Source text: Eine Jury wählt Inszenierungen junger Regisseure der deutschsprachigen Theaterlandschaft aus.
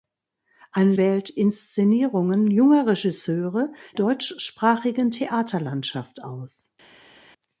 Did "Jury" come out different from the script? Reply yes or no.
yes